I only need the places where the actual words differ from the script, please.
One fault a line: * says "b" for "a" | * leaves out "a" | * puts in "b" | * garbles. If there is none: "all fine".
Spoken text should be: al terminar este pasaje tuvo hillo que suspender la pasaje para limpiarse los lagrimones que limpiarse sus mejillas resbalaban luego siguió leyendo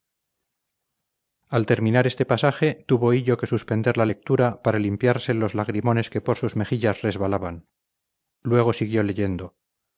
* says "lectura" for "pasaje"
* says "por" for "limpiarse"